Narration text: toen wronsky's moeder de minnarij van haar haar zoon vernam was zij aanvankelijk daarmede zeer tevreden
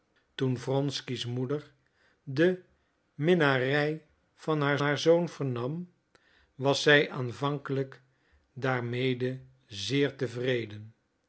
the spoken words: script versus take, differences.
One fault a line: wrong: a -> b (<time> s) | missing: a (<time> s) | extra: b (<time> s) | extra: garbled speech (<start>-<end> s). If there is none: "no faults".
no faults